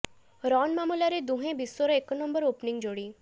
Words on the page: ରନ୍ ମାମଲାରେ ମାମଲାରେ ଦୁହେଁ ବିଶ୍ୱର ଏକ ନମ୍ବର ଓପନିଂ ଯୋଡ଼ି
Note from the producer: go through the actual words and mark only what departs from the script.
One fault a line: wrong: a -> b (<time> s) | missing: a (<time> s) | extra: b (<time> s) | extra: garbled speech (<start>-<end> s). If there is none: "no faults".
missing: ମାମଲାରେ (1.2 s)